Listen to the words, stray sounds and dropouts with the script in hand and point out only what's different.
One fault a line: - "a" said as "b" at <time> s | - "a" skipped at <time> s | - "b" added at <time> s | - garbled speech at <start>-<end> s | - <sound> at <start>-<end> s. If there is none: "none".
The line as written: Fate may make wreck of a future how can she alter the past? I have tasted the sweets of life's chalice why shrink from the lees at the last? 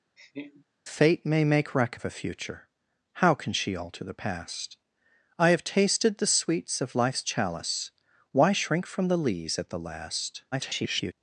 - laugh at 0.2-0.7 s
- garbled speech at 10.5-11.1 s